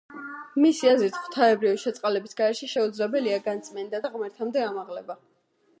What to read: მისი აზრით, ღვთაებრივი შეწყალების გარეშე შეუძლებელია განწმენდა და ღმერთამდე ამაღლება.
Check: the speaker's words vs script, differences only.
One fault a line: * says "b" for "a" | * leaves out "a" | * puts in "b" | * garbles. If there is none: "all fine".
all fine